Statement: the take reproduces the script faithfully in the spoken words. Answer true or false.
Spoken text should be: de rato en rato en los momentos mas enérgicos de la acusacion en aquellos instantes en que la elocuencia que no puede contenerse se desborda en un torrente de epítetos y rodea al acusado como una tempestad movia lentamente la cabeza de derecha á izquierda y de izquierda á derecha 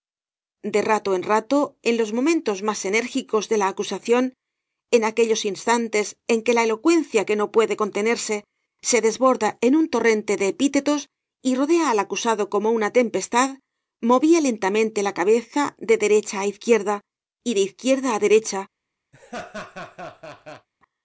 true